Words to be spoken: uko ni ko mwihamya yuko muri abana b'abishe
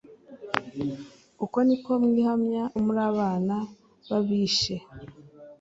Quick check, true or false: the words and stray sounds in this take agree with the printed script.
false